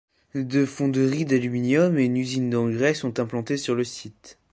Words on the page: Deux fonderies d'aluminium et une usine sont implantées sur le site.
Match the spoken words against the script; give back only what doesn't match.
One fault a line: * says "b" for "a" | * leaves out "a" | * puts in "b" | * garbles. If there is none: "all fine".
* puts in "d'engrais"